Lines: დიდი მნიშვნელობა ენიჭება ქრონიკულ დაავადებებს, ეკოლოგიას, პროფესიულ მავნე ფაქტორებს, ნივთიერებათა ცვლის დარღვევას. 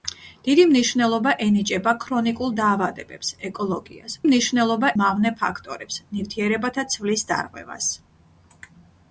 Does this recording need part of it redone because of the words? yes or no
yes